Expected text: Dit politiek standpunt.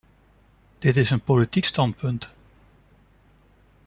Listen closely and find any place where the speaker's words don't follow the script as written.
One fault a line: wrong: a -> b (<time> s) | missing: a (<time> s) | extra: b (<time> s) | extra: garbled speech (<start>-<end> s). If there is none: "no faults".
extra: is een (1.0 s)